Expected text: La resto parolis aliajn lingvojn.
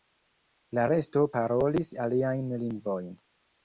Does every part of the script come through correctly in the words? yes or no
yes